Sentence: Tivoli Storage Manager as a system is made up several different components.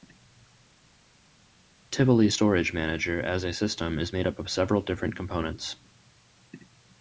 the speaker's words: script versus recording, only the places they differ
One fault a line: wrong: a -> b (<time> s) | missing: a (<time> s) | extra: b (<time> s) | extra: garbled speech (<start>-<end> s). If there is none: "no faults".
extra: of (4.4 s)